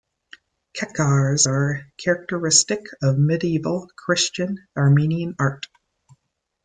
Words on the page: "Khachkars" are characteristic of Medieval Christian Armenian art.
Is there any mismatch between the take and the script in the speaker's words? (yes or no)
no